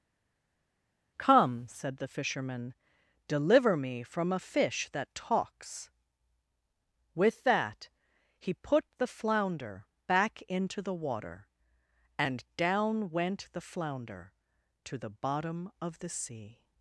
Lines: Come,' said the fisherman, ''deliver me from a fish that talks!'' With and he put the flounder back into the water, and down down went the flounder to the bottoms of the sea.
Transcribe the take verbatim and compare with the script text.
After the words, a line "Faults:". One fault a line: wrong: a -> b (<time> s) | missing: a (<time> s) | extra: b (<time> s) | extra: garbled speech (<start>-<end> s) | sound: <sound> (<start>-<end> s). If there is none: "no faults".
Come,' said the fisherman, ''deliver me from a fish that talks!'' With that he put the flounder back into the water, and down went the flounder to the bottom of the sea.
Faults:
wrong: and -> that (7.4 s)
missing: down (13.1 s)
wrong: bottoms -> bottom (15.1 s)